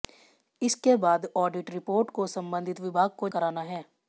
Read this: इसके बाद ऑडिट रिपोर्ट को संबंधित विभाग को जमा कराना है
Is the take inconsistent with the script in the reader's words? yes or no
yes